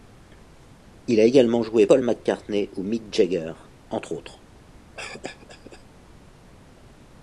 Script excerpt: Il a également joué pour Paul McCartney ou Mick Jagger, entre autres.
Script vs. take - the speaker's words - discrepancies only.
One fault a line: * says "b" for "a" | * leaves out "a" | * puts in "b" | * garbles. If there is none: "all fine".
* leaves out "pour"